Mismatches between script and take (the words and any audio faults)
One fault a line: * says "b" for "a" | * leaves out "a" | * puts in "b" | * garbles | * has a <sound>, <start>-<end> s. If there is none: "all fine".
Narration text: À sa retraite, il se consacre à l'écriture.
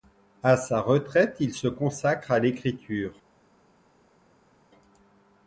all fine